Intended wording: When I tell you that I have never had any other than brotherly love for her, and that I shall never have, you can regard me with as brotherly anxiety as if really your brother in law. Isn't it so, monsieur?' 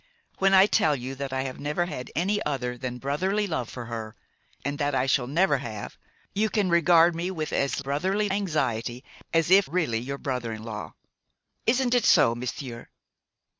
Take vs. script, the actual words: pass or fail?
pass